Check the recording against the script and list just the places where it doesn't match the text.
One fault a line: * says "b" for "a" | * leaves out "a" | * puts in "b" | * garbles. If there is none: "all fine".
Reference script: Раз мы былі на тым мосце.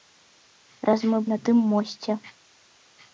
* leaves out "былі"